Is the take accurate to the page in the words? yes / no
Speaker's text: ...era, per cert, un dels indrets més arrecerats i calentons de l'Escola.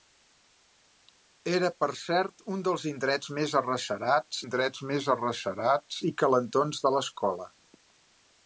no